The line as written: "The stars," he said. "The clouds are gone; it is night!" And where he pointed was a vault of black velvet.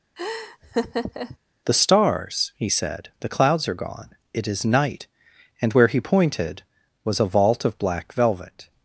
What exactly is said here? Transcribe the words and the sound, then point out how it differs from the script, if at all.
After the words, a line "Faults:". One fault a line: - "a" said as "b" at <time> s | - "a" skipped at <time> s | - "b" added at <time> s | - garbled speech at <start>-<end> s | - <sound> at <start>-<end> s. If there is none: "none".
"The stars," he said. "The clouds are gone; it is night!" And where he pointed was a vault of black velvet.
Faults:
- laugh at 0.2-1.4 s